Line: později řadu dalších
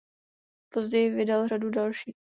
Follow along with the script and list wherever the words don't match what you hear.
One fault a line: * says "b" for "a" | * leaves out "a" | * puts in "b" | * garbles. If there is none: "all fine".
* puts in "vydal"